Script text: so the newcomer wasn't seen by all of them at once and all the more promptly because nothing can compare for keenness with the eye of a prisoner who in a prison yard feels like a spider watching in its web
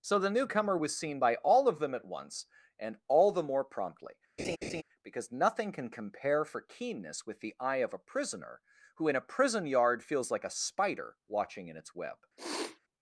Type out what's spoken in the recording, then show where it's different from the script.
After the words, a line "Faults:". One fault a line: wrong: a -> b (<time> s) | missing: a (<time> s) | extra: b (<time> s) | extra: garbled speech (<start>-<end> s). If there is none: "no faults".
so the newcomer was seen by all of them at once and all the more promptly because nothing can compare for keenness with the eye of a prisoner who in a prison yard feels like a spider watching in its web
Faults:
wrong: wasn't -> was (0.8 s)